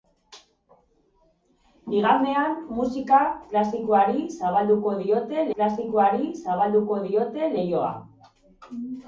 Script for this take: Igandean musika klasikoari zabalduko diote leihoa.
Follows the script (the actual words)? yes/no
no